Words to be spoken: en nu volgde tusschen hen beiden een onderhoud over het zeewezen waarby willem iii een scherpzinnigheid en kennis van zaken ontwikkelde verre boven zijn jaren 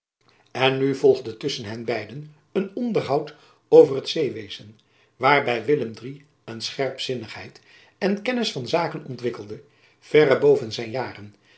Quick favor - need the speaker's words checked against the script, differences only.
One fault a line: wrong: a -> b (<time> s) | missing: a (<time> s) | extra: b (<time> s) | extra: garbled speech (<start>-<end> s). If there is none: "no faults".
no faults